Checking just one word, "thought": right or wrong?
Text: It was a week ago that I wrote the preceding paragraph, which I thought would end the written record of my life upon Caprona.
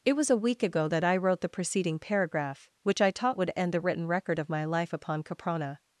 wrong